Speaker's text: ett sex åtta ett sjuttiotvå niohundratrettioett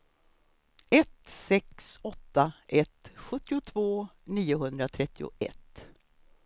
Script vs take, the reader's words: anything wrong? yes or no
no